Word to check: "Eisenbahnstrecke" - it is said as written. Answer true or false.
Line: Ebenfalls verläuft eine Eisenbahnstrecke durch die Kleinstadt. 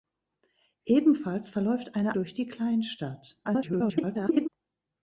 false